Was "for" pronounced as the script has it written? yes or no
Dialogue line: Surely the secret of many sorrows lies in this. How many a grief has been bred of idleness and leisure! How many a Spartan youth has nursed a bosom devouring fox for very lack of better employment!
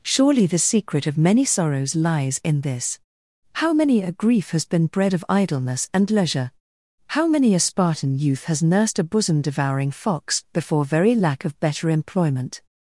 no